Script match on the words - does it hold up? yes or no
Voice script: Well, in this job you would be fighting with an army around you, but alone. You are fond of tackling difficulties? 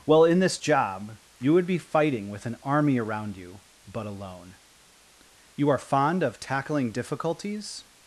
yes